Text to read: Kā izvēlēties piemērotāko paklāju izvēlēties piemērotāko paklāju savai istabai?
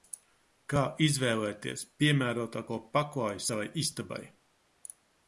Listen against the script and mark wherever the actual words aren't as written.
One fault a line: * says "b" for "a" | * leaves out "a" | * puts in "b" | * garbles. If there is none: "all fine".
* leaves out "izvēlēties piemērotāko paklāju"